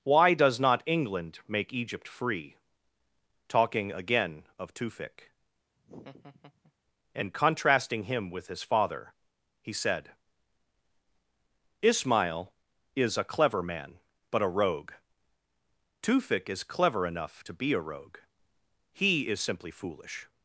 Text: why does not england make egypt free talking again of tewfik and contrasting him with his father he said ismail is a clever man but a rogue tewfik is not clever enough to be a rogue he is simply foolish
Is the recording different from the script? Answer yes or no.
yes